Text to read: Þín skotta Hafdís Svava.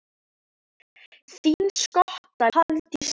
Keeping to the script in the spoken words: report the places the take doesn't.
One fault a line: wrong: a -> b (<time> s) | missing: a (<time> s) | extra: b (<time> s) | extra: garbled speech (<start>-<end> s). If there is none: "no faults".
no faults